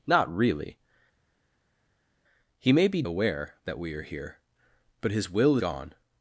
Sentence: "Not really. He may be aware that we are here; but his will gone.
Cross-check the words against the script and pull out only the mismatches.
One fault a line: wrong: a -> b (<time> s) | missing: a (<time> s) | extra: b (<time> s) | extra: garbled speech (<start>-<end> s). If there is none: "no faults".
no faults